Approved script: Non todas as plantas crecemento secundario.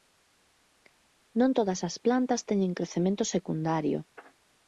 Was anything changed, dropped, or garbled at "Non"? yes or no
no